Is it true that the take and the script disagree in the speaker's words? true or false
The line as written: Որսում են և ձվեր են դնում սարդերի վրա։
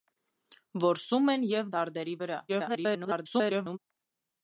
true